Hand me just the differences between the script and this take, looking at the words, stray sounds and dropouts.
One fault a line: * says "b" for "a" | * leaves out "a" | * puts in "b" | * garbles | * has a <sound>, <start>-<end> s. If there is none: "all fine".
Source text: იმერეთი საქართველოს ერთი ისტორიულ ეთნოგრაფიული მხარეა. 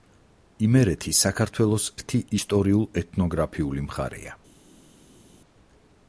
all fine